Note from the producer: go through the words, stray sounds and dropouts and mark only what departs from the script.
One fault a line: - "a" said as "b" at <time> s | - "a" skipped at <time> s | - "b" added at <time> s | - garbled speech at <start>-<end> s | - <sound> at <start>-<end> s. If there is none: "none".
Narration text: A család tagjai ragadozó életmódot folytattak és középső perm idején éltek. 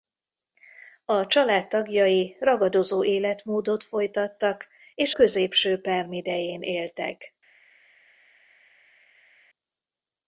none